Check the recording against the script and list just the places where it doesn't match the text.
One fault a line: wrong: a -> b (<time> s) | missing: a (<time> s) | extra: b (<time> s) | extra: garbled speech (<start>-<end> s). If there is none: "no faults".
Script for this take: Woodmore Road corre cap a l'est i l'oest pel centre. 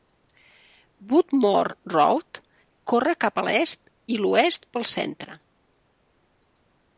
no faults